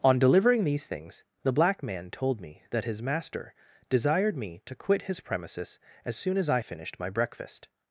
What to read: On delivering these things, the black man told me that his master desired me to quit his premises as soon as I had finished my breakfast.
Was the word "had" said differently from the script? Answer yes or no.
yes